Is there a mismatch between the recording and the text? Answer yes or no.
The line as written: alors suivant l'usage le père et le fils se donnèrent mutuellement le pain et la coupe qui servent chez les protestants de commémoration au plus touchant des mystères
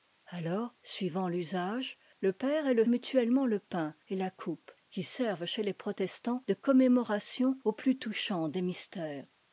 yes